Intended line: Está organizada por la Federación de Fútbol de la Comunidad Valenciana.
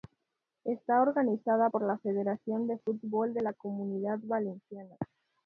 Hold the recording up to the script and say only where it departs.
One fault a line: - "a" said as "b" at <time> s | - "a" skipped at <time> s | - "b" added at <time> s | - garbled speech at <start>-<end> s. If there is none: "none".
none